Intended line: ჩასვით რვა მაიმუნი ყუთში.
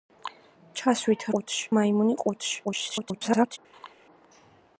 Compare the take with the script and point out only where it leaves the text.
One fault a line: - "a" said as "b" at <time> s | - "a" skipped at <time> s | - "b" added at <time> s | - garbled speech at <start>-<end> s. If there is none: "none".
- "რვა" said as "ყუთში" at 1.3 s
- garbled speech at 2.6-3.6 s